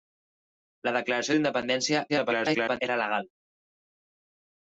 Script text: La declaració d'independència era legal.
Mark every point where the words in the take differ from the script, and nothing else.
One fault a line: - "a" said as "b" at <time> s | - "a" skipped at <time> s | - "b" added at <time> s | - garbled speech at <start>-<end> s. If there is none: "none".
- garbled speech at 2.1-2.8 s